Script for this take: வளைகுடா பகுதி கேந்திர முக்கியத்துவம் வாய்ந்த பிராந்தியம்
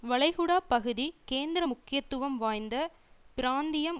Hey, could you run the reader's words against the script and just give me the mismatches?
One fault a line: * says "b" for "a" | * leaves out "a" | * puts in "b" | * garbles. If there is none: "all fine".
all fine